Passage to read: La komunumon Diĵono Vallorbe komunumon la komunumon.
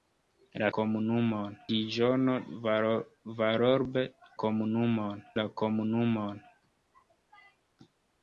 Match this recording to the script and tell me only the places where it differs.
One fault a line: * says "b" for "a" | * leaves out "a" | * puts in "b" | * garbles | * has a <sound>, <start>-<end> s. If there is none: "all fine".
all fine